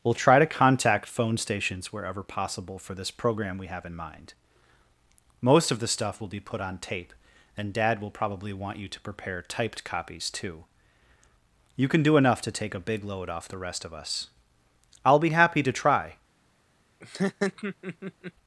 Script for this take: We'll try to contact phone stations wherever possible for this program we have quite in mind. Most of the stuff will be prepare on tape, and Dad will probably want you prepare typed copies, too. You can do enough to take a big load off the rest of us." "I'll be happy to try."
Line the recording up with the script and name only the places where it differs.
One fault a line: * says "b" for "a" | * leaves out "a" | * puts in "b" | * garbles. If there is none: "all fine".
* leaves out "quite"
* says "put" for "prepare"
* puts in "to"